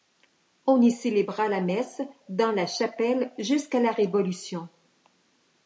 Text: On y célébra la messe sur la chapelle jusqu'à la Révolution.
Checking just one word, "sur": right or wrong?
wrong